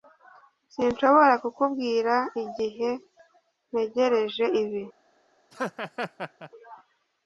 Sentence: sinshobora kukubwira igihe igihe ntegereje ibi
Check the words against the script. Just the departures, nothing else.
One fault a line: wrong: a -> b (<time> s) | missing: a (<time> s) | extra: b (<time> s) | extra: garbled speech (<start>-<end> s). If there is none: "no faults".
missing: igihe (2.9 s)